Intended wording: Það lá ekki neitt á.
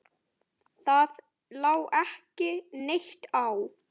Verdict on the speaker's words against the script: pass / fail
pass